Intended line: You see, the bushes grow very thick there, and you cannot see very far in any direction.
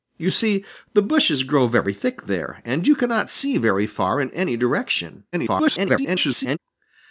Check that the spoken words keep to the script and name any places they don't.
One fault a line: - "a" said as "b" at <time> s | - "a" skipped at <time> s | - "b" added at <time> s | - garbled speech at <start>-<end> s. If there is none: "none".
- garbled speech at 5.3-6.6 s